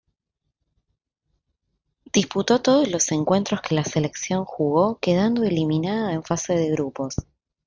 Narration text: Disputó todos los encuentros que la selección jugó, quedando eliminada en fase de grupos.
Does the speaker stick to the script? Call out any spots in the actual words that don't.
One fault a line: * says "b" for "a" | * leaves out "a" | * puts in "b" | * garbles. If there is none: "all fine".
all fine